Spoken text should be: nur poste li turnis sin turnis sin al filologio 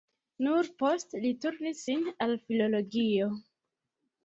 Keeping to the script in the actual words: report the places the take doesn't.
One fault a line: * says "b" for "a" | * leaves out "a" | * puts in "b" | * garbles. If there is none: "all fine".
* leaves out "turnis sin"